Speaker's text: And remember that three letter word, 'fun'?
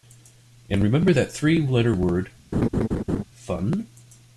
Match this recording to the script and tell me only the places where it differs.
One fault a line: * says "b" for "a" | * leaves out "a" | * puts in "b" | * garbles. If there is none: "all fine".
all fine